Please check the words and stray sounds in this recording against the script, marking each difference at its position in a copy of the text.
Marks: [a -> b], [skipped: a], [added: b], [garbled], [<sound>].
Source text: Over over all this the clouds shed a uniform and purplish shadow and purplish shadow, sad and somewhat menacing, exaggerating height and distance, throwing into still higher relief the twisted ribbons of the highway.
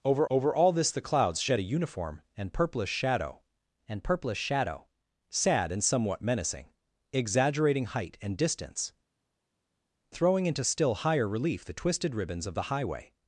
Over over all this the clouds shed a uniform and purplish shadow and purplish shadow, sad and somewhat menacing, exaggerating height and distance, throwing into still higher relief the twisted ribbons of the highway.